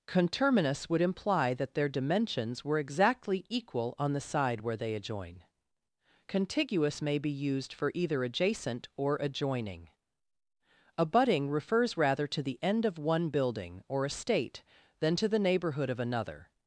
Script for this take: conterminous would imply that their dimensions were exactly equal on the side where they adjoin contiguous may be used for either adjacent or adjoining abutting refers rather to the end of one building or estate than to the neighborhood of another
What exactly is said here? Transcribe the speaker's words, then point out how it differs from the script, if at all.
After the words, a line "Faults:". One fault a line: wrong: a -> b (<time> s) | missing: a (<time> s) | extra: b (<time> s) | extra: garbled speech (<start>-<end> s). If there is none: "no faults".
conterminous would imply that their dimensions were exactly equal on the side where they adjoin contiguous may be used for either adjacent or adjoining abutting refers rather to the end of one building or estate than to the neighborhood of another
Faults:
no faults